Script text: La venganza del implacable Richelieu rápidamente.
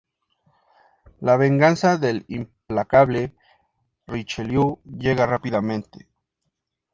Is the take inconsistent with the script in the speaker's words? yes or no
yes